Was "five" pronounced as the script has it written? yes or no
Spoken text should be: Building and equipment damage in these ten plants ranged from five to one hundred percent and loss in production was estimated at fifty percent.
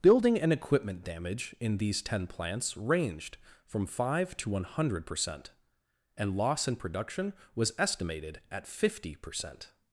yes